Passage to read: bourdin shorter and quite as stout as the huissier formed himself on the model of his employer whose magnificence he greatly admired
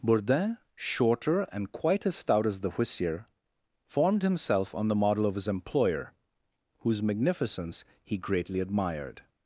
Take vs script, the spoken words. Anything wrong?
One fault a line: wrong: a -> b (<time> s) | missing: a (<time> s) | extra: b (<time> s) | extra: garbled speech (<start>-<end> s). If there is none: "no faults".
no faults